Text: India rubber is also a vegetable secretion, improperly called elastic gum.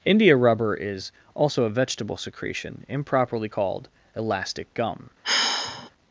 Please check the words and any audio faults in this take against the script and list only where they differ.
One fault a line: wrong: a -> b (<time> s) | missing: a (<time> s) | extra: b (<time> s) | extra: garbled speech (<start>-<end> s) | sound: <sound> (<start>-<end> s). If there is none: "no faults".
sound: sigh (5.2-5.9 s)